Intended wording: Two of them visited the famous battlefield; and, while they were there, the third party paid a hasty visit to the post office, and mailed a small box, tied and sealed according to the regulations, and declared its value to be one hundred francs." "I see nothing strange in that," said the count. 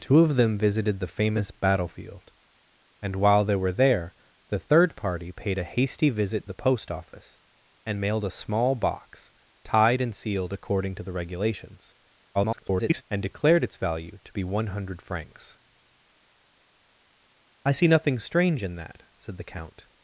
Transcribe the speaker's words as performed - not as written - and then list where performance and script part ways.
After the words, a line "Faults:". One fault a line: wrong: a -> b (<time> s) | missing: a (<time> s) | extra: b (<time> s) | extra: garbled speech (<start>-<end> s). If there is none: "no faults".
Two of them visited the famous battlefield; and, while they were there, the third party paid a hasty visit the post office, and mailed a small box, tied and sealed according to the regulations, [garbled] and declared its value to be one hundred francs." "I see nothing strange in that," said the count.
Faults:
missing: to (6.5 s)
extra: garbled speech (12.3-13.0 s)